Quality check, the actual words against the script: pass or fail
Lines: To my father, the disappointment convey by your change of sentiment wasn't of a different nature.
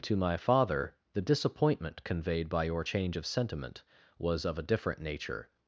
fail